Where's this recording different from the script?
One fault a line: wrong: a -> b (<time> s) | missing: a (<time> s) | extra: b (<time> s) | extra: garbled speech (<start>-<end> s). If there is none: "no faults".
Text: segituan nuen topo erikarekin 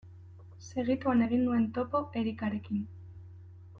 extra: egin (1.2 s)